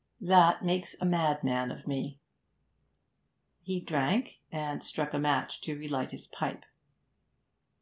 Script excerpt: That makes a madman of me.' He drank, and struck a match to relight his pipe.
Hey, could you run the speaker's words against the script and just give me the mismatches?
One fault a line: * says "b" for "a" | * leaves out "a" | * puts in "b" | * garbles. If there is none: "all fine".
all fine